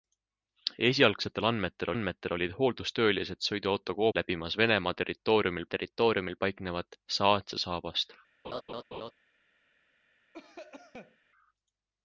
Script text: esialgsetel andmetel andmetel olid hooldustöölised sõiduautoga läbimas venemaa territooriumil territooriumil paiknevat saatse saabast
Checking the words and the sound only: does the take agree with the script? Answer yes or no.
no